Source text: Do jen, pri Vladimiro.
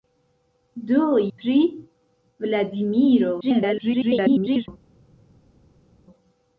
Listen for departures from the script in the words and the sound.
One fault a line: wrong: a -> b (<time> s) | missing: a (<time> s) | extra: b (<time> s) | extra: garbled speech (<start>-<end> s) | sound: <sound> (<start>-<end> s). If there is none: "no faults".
missing: jen (1.0 s)
extra: garbled speech (3.4-4.7 s)